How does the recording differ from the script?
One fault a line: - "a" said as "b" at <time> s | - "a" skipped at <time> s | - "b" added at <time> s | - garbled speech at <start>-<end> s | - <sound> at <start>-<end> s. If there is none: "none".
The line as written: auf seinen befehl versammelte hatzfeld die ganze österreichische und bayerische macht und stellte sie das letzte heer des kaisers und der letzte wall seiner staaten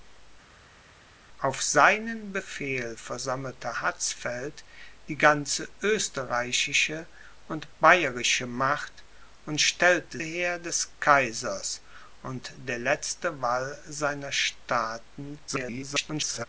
- "sie das letzte" skipped at 10.2 s
- garbled speech at 15.5-16.5 s